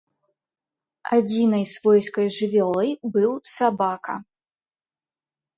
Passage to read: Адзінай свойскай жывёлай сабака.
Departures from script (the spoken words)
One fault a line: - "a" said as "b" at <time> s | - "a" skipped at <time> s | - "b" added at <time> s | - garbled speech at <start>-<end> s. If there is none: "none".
- "быў" added at 3.2 s